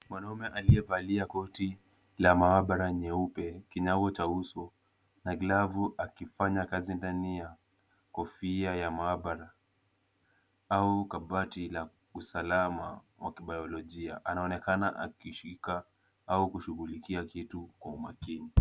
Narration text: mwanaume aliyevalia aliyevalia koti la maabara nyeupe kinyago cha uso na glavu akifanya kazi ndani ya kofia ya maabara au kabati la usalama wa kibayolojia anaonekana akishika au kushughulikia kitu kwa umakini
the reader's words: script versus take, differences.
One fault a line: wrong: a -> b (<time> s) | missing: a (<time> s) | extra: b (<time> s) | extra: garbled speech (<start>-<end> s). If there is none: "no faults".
missing: aliyevalia (1.2 s)